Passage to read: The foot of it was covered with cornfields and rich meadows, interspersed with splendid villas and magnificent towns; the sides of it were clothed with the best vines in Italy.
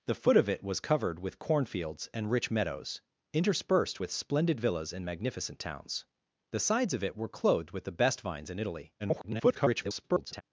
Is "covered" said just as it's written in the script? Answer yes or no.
yes